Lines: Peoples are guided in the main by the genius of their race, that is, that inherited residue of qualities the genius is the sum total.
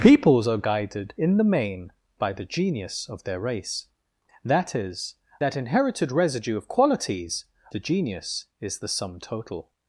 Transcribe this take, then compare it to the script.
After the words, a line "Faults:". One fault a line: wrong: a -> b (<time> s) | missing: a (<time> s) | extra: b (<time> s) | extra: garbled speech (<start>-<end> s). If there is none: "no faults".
Peoples are guided in the main by the genius of their race, that is, that inherited residue of qualities the genius is the sum total.
Faults:
no faults